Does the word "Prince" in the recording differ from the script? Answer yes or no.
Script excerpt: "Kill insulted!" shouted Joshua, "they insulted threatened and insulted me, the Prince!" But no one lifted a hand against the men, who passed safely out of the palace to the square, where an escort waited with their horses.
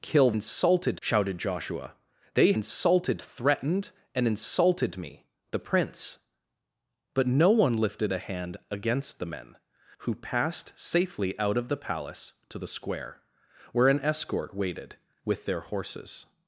no